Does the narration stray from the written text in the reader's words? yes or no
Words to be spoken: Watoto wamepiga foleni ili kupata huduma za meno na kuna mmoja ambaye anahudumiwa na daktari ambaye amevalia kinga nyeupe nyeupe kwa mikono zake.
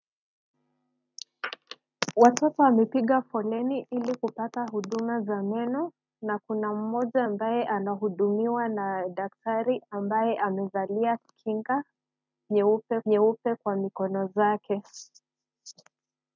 no